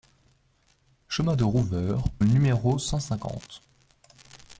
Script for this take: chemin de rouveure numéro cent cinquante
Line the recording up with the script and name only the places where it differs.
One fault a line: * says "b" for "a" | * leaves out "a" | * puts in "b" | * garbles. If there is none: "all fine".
all fine